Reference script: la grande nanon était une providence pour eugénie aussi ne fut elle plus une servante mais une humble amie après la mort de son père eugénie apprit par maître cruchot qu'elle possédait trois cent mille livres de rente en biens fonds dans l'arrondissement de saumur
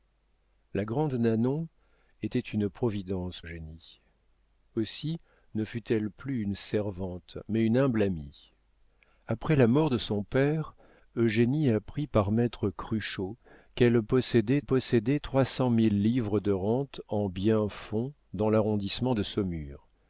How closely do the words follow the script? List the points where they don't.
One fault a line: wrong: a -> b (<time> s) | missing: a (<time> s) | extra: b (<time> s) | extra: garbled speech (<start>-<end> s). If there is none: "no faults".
missing: pour (3.4 s)
extra: possédait (14.6 s)